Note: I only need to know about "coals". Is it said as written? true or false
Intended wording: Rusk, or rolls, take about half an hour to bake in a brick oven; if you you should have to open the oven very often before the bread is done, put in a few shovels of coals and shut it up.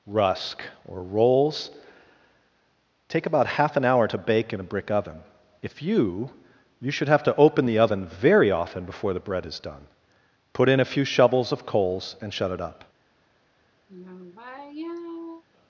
true